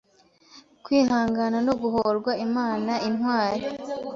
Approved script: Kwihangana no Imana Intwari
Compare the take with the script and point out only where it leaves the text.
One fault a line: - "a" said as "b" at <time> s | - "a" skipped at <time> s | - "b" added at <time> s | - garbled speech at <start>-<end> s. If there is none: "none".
- "Guhorwa" added at 1.8 s